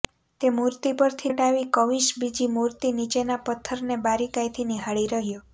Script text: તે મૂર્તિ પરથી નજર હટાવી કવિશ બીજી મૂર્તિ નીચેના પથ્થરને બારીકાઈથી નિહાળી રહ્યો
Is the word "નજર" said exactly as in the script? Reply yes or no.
no